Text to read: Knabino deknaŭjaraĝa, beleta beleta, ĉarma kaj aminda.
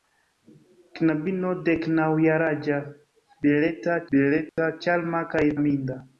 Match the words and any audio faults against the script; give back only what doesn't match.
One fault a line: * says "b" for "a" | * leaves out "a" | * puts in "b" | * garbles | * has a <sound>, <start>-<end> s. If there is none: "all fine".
* has a dropout, 4.5-4.6 s